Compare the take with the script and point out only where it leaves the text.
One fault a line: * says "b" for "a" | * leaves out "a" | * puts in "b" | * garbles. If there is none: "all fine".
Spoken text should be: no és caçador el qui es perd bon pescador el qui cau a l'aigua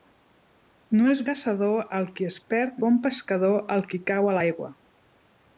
all fine